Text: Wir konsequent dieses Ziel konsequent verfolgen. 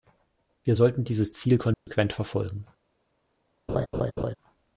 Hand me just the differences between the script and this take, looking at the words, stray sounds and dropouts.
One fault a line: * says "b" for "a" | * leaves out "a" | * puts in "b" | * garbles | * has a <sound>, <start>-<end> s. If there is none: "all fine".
* says "sollten" for "konsequent"
* has a dropout, 1.7-1.9 s
* has a laugh, 3.7-4.4 s